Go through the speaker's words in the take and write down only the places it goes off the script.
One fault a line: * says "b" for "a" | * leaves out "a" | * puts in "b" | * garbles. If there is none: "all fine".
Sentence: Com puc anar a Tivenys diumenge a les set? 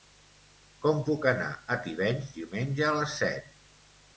all fine